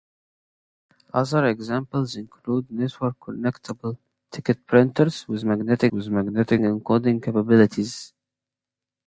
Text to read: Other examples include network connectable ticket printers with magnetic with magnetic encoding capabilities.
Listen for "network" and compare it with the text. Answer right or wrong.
right